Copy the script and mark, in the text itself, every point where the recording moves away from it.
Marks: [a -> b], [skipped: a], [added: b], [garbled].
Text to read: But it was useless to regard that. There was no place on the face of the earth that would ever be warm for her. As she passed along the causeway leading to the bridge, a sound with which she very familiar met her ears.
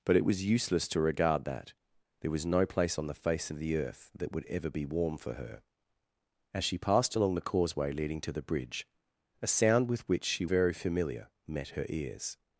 But it was useless to regard that. There was no place on the face of the earth that would ever be warm for her. As she passed along the causeway leading to the bridge, a sound with which she very familiar met her ears.